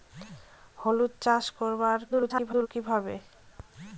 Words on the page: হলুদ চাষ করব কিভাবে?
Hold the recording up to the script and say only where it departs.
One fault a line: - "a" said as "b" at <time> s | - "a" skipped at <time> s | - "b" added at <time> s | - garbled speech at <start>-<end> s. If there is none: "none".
- garbled speech at 2.1-2.7 s